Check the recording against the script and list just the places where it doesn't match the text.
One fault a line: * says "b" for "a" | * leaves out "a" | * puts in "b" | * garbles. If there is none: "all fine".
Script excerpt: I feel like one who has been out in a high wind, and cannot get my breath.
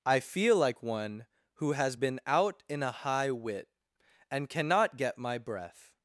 * says "wit" for "wind"